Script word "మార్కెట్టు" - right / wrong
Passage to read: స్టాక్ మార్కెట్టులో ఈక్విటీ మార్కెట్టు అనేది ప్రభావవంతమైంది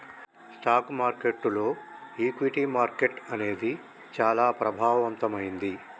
right